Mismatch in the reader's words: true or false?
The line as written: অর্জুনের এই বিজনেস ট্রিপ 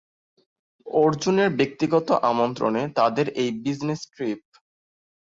true